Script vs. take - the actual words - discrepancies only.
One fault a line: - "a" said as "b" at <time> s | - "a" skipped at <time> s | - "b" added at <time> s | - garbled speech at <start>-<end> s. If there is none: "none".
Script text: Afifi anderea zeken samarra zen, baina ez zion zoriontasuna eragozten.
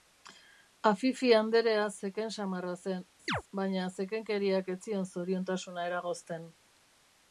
- "zekenkeriak" added at 4.0 s